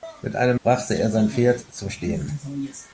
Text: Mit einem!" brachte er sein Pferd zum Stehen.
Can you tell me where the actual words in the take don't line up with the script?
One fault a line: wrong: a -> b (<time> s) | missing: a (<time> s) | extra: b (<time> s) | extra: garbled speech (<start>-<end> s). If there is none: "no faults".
no faults